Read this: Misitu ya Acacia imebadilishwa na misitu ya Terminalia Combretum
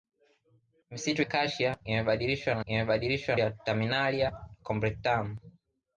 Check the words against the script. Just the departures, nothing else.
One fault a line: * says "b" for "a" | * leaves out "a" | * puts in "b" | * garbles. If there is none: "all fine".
* leaves out "ya"
* says "imebadilishwa" for "misitu"